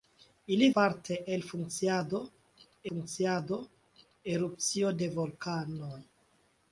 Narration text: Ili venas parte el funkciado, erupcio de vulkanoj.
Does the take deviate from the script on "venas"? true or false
true